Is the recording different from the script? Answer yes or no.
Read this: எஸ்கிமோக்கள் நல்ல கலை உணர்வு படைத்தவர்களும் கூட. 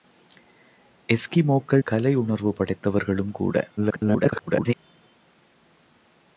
yes